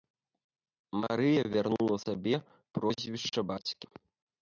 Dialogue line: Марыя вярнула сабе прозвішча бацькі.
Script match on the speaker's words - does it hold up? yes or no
yes